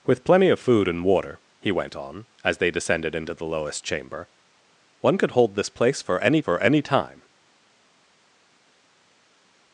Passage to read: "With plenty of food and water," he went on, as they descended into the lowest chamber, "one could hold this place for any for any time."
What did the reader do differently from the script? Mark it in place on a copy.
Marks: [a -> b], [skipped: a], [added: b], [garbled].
"With plenty of food and water," he went on, as they descended into the lowest chamber, "one could hold this place for any for any time."